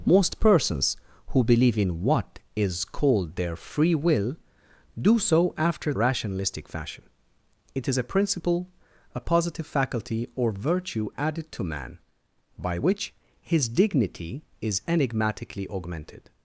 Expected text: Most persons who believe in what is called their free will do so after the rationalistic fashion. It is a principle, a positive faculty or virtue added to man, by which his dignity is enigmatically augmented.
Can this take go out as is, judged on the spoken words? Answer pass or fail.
fail